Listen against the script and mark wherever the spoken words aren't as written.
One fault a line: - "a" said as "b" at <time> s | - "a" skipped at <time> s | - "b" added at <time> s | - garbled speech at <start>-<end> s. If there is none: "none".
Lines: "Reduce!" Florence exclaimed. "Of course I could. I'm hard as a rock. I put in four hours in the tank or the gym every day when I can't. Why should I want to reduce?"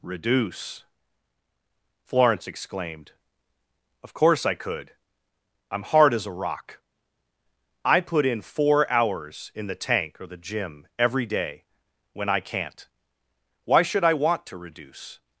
none